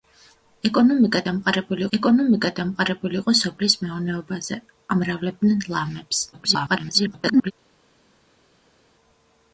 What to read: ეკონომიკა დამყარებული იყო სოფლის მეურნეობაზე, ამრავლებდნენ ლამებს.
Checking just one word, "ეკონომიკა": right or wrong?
right